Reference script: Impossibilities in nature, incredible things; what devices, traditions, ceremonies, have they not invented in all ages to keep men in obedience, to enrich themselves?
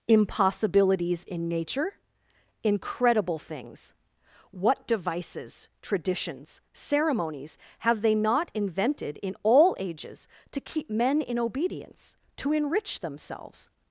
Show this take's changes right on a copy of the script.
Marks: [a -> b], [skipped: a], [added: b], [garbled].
Impossibilities in nature, incredible things; what devices, traditions, ceremonies, have they not invented in all ages to keep men in obedience, to enrich themselves?